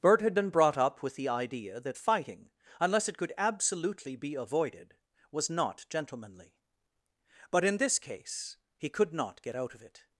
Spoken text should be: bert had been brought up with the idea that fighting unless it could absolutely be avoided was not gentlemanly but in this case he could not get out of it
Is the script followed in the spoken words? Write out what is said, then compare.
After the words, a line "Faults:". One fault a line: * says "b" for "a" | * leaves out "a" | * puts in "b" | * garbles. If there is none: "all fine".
bert had been brought up with the idea that fighting unless it could absolutely be avoided was not gentlemanly but in this case he could not get out of it
Faults:
all fine